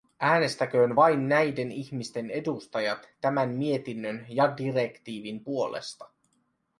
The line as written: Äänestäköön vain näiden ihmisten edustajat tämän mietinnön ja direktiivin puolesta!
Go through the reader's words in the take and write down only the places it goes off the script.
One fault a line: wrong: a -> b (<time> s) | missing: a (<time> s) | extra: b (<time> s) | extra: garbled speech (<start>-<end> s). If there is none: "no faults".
no faults